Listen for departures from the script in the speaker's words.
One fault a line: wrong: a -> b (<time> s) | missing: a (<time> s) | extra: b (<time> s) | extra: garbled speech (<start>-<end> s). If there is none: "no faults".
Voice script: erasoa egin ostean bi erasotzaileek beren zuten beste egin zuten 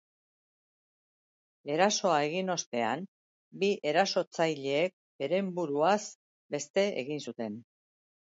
wrong: zuten -> buruaz (5.6 s)